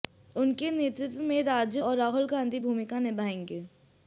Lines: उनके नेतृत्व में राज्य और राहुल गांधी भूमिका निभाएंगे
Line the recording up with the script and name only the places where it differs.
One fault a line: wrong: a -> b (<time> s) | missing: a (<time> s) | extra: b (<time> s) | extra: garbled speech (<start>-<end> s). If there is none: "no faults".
no faults